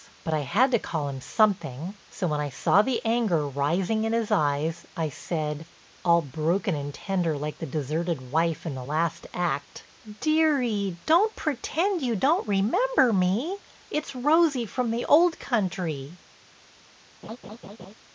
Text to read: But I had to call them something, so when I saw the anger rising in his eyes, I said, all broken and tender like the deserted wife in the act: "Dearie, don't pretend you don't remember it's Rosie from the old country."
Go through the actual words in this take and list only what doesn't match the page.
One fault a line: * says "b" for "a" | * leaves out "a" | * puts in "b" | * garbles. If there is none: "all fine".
* says "him" for "them"
* puts in "last"
* puts in "me"